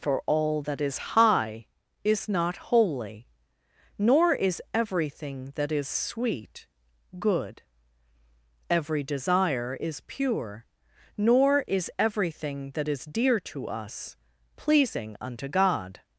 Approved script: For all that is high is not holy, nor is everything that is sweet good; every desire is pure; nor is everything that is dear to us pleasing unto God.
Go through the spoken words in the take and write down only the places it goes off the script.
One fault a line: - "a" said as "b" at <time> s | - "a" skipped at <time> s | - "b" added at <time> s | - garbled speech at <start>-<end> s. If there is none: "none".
none